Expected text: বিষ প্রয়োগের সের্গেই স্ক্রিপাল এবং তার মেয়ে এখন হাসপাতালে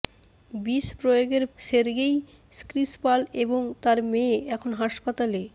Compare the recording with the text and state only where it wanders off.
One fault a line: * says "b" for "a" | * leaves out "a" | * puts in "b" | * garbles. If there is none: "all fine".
all fine